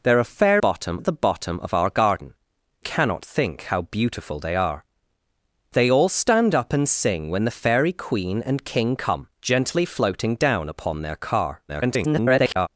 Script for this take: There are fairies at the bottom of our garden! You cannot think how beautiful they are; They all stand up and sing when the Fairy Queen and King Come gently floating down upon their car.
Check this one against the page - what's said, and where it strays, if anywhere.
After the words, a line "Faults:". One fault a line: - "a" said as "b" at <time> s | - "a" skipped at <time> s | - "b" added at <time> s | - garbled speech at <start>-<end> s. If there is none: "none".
There are bottom at the bottom of our garden! Cannot think how beautiful they are; They all stand up and sing when the Fairy Queen and King Come gently floating down upon their car. [garbled]
Faults:
- "fairies" said as "bottom" at 0.6 s
- "You" skipped at 2.3 s
- garbled speech at 11.7-12.7 s